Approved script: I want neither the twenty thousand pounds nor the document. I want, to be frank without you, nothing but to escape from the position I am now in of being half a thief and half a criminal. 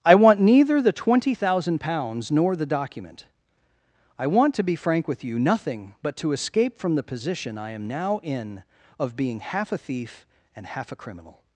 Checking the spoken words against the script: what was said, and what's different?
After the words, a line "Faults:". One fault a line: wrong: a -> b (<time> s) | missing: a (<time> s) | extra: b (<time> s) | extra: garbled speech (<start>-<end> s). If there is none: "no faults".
I want neither the twenty thousand pounds nor the document. I want, to be frank with you, nothing but to escape from the position I am now in of being half a thief and half a criminal.
Faults:
wrong: without -> with (5.1 s)